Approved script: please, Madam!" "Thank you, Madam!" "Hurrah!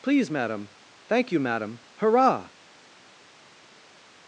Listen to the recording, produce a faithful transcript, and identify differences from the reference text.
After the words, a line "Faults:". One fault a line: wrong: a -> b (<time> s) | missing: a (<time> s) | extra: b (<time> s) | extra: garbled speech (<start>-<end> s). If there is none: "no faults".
please, Madam!" "Thank you, Madam!" "Hurrah!
Faults:
no faults